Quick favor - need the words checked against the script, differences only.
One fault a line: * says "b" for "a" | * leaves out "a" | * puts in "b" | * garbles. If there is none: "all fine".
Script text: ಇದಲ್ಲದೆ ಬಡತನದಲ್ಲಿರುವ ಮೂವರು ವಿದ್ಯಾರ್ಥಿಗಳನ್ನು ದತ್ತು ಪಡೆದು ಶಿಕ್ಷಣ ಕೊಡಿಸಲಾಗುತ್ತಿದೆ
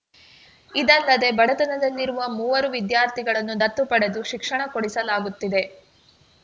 all fine